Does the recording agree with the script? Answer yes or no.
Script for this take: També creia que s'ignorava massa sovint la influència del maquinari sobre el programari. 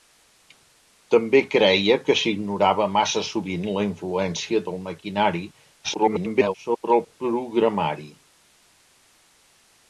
no